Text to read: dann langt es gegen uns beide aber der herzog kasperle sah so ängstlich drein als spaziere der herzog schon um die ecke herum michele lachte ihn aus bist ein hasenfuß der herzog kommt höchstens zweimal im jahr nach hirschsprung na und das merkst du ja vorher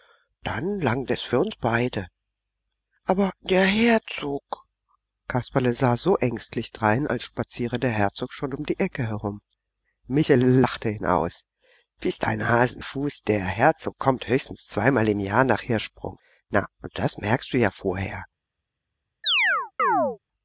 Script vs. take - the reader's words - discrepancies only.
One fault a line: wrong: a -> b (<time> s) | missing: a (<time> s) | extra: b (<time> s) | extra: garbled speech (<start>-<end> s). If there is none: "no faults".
wrong: gegen -> für (1.2 s)